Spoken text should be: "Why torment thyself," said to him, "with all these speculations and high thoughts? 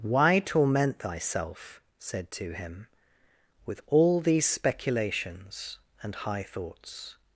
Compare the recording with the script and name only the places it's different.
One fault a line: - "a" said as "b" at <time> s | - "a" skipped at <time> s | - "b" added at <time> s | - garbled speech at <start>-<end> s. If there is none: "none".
none